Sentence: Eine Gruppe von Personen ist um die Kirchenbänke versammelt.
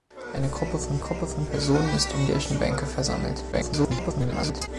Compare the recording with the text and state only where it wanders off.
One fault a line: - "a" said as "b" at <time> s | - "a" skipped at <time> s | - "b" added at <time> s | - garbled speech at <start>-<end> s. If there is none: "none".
- "Gruppe von" added at 1.0 s
- "die" skipped at 2.2 s
- garbled speech at 3.5-4.7 s